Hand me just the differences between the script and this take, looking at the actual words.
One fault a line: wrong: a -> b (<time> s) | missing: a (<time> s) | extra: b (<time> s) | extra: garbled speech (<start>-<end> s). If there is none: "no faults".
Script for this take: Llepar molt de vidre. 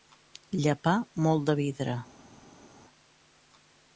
no faults